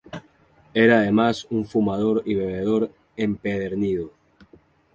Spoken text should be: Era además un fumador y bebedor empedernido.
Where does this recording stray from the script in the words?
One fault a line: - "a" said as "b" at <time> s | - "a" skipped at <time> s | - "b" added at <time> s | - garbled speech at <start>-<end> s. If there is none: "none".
none